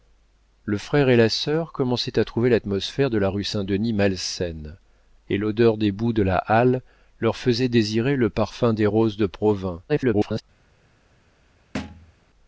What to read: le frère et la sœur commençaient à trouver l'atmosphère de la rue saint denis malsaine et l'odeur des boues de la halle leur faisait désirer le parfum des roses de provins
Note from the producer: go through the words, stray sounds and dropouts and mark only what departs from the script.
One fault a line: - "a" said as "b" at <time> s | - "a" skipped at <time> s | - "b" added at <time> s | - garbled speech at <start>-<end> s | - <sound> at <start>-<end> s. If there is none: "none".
- garbled speech at 9.9-10.4 s
- thud at 11.7-12.1 s